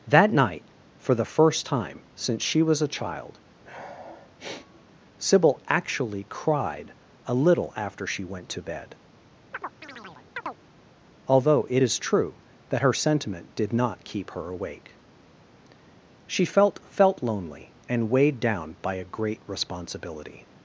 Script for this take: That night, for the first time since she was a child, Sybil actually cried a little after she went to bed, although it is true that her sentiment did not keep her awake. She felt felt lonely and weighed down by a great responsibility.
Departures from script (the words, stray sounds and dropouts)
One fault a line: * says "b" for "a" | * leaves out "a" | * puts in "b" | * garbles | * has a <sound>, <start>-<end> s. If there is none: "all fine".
* has a sniff, 3.6-4.9 s
* has a chirp, 9.5-10.6 s